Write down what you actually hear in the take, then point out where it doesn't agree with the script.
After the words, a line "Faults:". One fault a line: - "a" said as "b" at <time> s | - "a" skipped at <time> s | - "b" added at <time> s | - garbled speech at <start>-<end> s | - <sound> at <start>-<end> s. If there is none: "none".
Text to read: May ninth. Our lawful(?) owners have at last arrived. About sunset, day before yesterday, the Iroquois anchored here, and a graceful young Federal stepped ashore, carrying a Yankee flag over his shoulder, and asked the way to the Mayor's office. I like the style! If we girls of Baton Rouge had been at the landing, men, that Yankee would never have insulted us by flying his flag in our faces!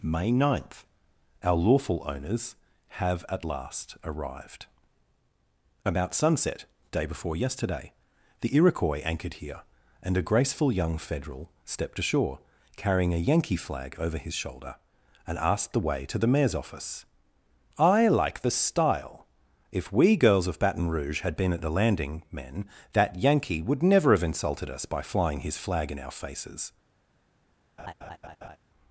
May ninth. Our lawful(?) owners have at last arrived. About sunset, day before yesterday, the Iroquois anchored here, and a graceful young Federal stepped ashore, carrying a Yankee flag over his shoulder, and asked the way to the Mayor's office. I like the style! If we girls of Baton Rouge had been at the landing, men, that Yankee would never have insulted us by flying his flag in our faces!
Faults:
- laugh at 27.8-28.6 s